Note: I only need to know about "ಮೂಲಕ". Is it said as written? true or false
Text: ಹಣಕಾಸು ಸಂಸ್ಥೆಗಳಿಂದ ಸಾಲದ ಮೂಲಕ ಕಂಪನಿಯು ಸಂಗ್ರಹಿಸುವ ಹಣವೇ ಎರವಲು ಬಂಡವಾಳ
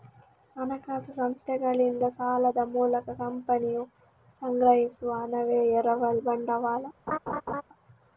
true